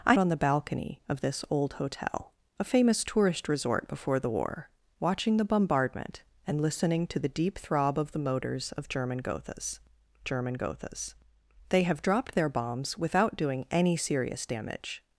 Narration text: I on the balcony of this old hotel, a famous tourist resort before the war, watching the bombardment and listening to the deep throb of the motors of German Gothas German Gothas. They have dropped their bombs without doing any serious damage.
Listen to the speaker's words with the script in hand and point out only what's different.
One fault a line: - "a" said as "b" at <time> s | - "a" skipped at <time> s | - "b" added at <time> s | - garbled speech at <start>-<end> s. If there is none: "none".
none